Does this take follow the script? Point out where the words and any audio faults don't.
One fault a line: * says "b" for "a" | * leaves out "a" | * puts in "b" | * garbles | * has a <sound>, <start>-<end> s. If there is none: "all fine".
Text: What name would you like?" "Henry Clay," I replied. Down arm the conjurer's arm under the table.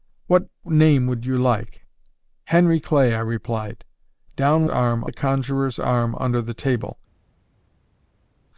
all fine